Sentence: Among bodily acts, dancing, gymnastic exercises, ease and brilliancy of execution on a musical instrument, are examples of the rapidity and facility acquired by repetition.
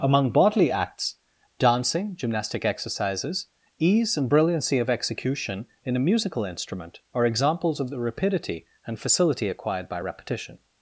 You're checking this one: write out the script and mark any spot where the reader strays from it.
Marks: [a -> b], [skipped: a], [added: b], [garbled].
Among bodily acts, dancing, gymnastic exercises, ease and brilliancy of execution [on -> in] a musical instrument, are examples of the rapidity and facility acquired by repetition.